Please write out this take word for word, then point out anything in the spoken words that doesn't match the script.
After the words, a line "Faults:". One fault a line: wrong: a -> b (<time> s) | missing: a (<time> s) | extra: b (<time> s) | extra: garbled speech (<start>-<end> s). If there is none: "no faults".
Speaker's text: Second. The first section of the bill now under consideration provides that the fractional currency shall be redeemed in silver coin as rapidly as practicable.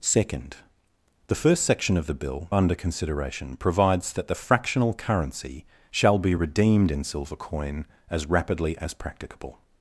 Second. The first section of the bill under consideration provides that the fractional currency shall be redeemed in silver coin as rapidly as practicable.
Faults:
missing: now (2.5 s)